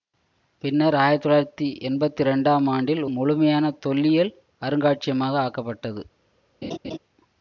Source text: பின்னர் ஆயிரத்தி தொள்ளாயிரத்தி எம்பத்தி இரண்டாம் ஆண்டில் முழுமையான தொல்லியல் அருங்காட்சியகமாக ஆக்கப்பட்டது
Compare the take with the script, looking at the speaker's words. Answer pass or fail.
pass